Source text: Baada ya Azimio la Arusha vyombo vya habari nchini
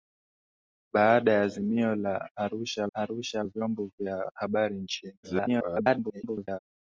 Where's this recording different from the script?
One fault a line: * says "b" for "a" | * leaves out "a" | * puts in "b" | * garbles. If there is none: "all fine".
* puts in "Arusha"
* garbles